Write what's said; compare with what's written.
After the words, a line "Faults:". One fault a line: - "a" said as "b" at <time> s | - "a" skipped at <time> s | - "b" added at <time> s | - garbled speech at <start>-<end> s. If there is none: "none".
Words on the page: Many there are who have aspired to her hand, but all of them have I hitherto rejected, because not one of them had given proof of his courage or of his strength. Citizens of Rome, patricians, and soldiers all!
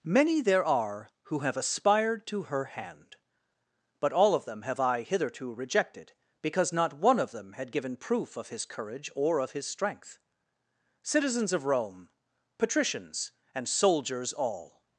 Many there are who have aspired to her hand, but all of them have I hitherto rejected, because not one of them had given proof of his courage or of his strength. Citizens of Rome, patricians, and soldiers all!
Faults:
none